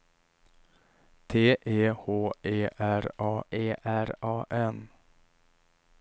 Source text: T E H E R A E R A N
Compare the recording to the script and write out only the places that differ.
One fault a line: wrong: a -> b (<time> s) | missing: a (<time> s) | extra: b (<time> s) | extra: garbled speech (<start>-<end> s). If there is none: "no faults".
no faults